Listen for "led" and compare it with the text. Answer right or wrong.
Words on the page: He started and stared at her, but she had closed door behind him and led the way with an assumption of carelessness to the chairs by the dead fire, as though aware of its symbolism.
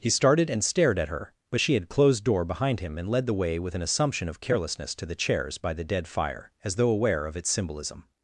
right